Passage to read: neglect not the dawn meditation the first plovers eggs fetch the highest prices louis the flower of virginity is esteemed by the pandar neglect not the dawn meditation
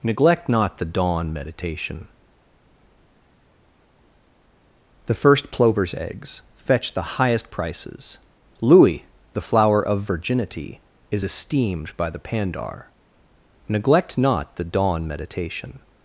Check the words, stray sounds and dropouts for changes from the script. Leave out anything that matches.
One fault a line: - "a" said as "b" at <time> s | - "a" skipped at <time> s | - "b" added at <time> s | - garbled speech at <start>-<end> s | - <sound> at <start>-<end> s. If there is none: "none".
none